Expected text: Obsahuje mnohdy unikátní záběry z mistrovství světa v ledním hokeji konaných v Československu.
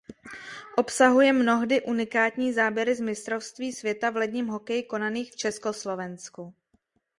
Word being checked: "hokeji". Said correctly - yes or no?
yes